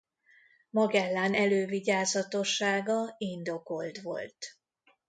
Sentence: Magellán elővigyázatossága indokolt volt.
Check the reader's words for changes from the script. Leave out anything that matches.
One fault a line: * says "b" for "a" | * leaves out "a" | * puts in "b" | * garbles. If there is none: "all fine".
all fine